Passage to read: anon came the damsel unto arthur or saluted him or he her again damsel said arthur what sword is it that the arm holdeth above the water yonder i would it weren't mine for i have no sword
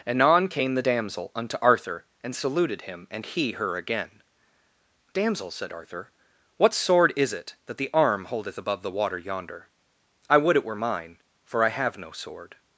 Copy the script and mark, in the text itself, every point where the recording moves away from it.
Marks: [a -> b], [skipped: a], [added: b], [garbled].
anon came the damsel unto arthur [or -> and] saluted him [or -> and] he her again damsel said arthur what sword is it that the arm holdeth above the water yonder i would it [weren't -> were] mine for i have no sword